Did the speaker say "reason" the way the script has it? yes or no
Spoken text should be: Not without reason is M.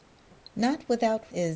no